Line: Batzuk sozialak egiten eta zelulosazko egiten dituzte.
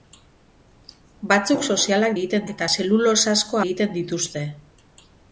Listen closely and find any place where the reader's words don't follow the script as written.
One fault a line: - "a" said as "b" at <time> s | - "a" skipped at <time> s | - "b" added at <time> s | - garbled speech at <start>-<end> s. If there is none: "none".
none